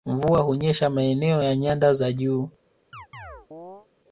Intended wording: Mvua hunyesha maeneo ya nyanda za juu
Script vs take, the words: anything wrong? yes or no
no